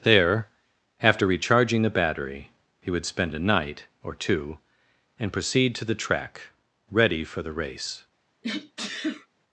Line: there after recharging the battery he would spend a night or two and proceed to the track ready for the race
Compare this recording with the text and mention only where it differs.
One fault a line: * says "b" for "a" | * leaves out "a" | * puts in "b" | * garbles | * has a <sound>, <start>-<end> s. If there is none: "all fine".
* has a sneeze, 8.4-9.3 s